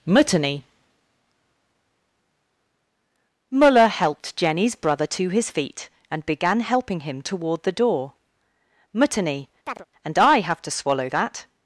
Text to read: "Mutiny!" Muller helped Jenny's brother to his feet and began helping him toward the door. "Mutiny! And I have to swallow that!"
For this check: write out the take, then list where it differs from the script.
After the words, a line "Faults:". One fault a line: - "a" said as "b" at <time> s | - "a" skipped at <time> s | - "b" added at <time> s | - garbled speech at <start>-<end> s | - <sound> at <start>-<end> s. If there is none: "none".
"Mutiny!" Muller helped Jenny's brother to his feet and began helping him toward the door. "Mutiny! And I have to swallow that!"
Faults:
- chirp at 9.7-9.9 s